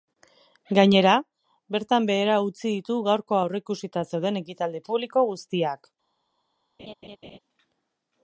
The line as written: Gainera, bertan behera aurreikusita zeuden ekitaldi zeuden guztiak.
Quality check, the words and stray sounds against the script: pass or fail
fail